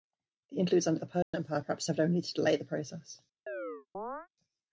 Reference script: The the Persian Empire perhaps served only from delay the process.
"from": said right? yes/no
no